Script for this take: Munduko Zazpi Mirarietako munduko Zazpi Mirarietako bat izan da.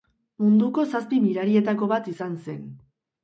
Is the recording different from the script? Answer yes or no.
yes